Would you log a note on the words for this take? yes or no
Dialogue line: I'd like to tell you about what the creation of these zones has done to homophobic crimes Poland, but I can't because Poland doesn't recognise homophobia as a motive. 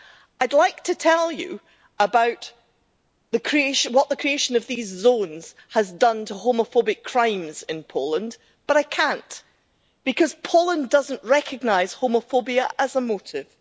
yes